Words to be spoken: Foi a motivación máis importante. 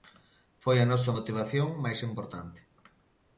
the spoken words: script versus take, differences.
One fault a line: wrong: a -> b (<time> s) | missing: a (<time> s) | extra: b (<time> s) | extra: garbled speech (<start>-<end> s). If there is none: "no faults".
extra: nosa (0.9 s)